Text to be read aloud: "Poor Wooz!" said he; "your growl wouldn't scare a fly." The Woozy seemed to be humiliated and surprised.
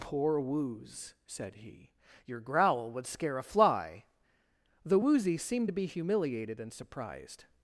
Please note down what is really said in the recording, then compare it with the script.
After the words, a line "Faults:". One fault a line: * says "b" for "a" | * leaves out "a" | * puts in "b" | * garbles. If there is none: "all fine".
"Poor Wooz!" said he; "your growl would scare a fly." The Woozy seemed to be humiliated and surprised.
Faults:
* says "would" for "wouldn't"